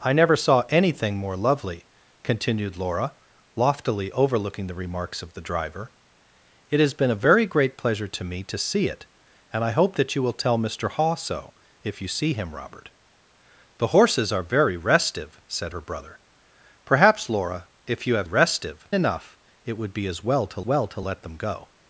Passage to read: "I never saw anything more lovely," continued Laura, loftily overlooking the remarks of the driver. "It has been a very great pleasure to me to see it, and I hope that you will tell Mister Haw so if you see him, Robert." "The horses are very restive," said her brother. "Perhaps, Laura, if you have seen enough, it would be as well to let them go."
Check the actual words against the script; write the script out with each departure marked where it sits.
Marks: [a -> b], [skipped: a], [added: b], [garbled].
"I never saw anything more lovely," continued Laura, loftily overlooking the remarks of the driver. "It has been a very great pleasure to me to see it, and I hope that you will tell Mister Haw so if you see him, Robert." "The horses are very restive," said her brother. "Perhaps, Laura, if you have [seen -> restive] enough, it would be as well to [added: well to] let them go."